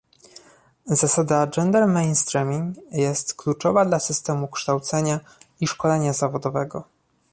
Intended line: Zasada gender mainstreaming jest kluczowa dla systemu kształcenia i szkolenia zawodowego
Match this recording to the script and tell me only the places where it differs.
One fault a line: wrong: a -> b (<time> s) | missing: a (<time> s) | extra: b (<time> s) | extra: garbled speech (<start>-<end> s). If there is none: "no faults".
no faults